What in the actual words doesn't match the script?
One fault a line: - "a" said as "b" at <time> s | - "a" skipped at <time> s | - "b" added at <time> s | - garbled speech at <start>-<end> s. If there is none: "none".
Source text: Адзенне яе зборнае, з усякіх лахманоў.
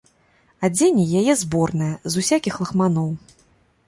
none